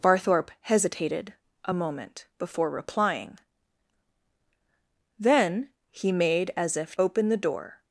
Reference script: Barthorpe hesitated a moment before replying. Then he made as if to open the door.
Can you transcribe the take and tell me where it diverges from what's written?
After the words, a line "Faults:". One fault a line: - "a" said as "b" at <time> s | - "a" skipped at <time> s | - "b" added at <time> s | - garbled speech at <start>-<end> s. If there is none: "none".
Barthorpe hesitated a moment before replying. Then he made as if open the door.
Faults:
- "to" skipped at 6.9 s